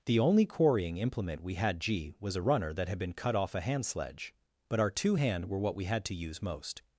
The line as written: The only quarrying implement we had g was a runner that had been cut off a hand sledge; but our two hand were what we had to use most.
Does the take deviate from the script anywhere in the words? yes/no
no